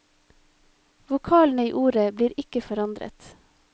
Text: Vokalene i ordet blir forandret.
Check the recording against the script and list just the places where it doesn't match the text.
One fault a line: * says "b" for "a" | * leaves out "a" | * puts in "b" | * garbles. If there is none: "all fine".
* puts in "ikke"